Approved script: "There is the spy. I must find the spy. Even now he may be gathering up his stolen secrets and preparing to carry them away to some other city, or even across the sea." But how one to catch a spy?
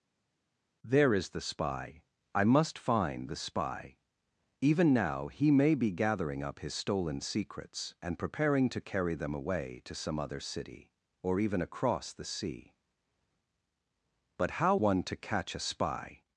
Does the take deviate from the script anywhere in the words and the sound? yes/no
no